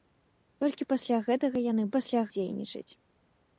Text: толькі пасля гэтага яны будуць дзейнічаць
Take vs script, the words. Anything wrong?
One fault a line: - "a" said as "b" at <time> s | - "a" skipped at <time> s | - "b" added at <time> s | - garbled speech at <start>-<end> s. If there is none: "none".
- "будуць" said as "пасля" at 2.0 s